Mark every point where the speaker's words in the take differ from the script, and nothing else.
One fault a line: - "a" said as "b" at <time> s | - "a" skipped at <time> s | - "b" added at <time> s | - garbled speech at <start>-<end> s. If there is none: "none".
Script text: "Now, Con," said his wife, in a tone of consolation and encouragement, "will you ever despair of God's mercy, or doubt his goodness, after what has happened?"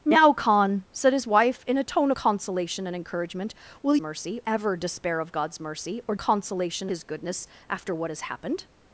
- "of" skipped at 2.1 s
- "you" said as "mercy" at 4.0 s
- "doubt" said as "consolation" at 6.2 s